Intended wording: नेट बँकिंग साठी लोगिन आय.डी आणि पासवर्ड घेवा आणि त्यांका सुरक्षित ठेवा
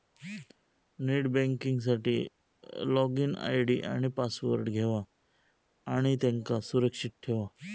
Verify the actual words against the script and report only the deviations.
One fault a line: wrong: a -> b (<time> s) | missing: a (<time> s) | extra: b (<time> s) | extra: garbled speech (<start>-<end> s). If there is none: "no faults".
no faults